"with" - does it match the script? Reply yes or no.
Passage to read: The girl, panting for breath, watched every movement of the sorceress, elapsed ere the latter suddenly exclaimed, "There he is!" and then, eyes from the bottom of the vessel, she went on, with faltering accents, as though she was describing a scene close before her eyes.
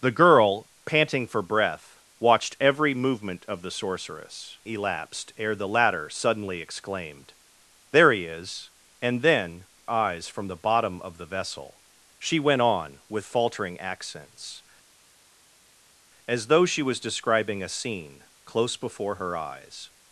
yes